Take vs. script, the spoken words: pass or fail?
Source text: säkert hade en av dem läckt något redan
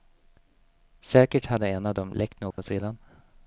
pass